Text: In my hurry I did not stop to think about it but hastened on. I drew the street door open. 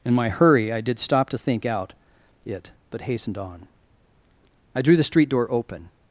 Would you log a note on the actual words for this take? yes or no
yes